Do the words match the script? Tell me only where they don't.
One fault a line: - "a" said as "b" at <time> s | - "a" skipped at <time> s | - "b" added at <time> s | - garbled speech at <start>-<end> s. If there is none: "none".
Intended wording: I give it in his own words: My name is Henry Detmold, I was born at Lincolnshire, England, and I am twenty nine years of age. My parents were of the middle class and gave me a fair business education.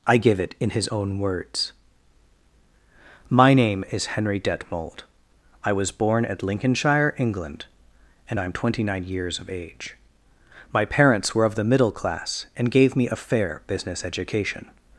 none